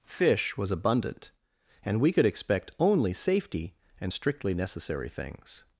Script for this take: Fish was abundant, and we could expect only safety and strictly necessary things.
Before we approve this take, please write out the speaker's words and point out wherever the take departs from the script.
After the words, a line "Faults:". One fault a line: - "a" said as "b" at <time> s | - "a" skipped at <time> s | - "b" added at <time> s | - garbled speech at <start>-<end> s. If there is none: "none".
Fish was abundant, and we could expect only safety and strictly necessary things.
Faults:
none